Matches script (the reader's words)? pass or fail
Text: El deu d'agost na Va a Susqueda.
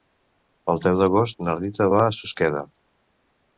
fail